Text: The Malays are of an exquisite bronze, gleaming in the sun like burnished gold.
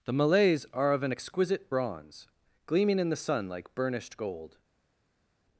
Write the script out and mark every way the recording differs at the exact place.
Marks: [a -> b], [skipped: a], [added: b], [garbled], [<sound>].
The Malays are of an exquisite bronze, gleaming in the sun like burnished gold.